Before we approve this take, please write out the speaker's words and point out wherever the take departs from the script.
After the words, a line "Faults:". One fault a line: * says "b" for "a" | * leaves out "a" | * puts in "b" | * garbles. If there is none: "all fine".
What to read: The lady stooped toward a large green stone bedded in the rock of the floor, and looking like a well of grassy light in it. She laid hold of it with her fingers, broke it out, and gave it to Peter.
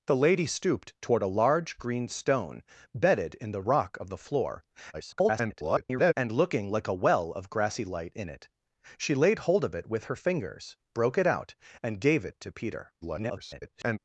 The lady stooped toward a large green stone bedded in the rock of the floor, [garbled] and looking like a well of grassy light in it. She laid hold of it with her fingers, broke it out, and gave it to Peter. [garbled]
Faults:
* garbles
* garbles